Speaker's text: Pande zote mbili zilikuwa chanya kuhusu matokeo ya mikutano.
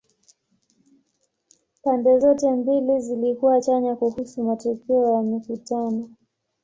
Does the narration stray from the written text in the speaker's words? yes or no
no